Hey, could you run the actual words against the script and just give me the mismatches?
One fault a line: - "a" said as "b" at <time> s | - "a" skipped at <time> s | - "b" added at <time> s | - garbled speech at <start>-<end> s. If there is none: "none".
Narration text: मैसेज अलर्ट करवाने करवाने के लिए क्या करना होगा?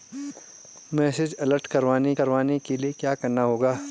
none